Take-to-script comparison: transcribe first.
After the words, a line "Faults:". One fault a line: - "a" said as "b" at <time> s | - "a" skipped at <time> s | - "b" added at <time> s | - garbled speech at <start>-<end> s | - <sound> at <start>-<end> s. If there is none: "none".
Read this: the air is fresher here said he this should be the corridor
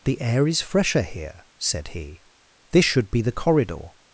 the air is fresher here said he this should be the corridor
Faults:
none